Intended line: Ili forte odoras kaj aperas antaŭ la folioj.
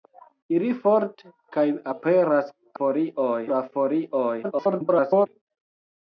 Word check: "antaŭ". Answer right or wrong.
wrong